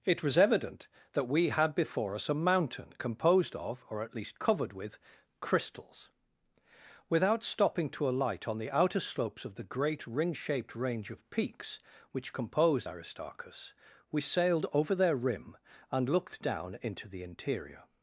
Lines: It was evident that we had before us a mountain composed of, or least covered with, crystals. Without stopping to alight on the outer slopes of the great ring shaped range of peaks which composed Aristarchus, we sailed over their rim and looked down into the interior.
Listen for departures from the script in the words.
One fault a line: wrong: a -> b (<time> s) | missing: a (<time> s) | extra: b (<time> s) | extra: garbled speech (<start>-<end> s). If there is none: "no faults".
extra: at (4.0 s)